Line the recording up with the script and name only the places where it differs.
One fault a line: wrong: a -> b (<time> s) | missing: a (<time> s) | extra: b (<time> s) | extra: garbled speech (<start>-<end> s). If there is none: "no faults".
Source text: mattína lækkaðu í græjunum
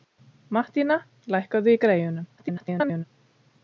extra: garbled speech (2.4-3.0 s)